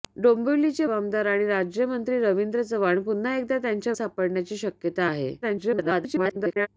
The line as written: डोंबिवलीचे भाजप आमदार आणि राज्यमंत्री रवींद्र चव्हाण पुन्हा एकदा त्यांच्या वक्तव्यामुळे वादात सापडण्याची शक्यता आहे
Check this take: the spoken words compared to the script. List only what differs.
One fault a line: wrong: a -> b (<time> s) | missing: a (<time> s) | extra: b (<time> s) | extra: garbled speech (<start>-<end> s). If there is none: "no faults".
missing: भाजप (0.8 s)
missing: वक्तव्यामुळे वादात (3.9 s)
extra: garbled speech (5.4-6.7 s)